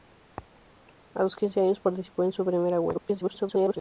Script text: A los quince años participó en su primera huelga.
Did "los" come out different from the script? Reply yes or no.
no